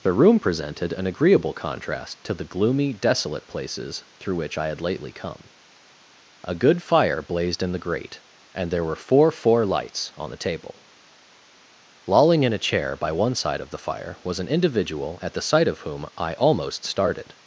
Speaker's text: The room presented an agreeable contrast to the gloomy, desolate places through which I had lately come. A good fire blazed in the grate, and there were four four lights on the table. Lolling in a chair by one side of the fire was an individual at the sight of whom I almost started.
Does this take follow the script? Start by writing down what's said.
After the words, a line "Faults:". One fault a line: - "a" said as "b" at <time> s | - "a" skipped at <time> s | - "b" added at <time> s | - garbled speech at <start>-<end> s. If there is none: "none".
The room presented an agreeable contrast to the gloomy, desolate places through which I had lately come. A good fire blazed in the grate, and there were four four lights on the table. Lolling in a chair by one side of the fire was an individual at the sight of whom I almost started.
Faults:
none